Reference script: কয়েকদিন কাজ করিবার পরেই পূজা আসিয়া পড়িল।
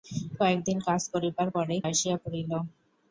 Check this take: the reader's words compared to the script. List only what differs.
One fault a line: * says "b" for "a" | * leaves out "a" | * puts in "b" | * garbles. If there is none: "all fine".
* leaves out "পূজা"